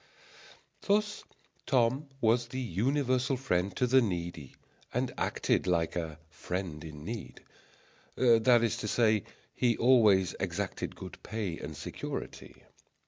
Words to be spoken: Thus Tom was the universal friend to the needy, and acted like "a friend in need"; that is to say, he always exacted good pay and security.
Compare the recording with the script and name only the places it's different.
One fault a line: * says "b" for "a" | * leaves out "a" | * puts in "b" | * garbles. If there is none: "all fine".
all fine